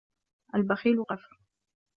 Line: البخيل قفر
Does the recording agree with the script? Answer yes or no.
yes